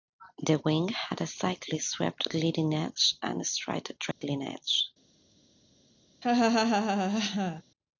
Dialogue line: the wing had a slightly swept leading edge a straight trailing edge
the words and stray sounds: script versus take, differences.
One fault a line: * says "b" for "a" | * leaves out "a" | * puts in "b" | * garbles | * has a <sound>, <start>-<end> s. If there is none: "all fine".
* puts in "and"
* has a dropout, 4.1-4.2 s
* has a laugh, 6.2-7.6 s